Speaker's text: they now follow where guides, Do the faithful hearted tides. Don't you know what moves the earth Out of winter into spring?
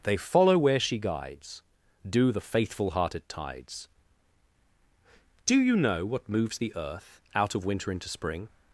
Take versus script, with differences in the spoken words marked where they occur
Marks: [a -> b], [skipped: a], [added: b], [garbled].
they [skipped: now] follow where [added: she] guides, Do the faithful hearted tides. [Don't -> Do] you know what moves the earth Out of winter into spring?